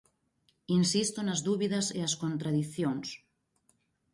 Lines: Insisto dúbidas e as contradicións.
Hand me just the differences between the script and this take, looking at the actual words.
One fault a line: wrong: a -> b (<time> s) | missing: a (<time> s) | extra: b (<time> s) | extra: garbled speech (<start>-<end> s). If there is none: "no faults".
extra: nas (1.2 s)